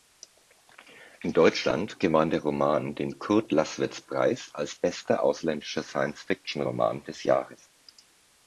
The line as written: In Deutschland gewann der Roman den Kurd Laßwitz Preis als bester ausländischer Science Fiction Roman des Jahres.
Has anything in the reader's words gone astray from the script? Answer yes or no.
no